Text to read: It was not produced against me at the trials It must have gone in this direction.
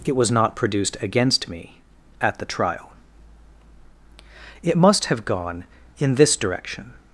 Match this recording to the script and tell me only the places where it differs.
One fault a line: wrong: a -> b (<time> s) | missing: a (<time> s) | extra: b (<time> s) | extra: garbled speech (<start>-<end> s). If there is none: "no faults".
wrong: trials -> trial (2.5 s)